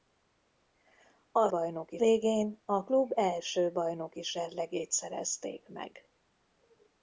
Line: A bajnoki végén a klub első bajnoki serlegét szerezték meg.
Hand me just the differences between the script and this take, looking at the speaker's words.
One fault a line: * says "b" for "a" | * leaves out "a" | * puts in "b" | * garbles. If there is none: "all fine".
all fine